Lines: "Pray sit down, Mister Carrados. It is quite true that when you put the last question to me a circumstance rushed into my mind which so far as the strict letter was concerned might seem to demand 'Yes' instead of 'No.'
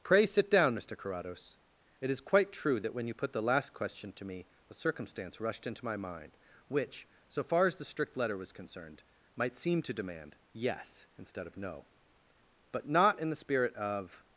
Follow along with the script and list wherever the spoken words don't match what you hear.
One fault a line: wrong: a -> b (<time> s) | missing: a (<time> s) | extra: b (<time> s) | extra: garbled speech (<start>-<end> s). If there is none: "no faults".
extra: But not in the spirit of (12.7 s)